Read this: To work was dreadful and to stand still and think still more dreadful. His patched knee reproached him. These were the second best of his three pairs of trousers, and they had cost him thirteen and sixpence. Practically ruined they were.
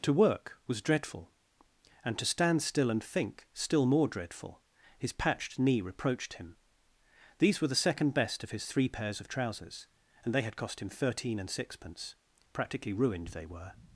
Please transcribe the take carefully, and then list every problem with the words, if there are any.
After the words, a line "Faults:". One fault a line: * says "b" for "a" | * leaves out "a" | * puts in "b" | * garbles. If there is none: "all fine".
To work was dreadful and to stand still and think still more dreadful. His patched knee reproached him. These were the second best of his three pairs of trousers, and they had cost him thirteen and sixpence. Practically ruined they were.
Faults:
all fine